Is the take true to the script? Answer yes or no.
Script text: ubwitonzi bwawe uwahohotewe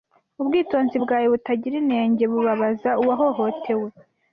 no